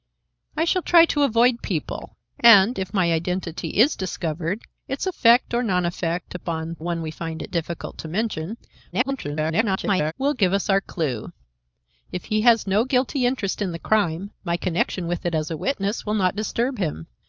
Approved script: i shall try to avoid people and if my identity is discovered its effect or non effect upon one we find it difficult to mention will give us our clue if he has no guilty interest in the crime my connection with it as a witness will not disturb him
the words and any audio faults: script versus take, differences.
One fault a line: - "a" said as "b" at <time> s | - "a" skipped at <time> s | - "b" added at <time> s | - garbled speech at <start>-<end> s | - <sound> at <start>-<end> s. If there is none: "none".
- garbled speech at 8.9-10.1 s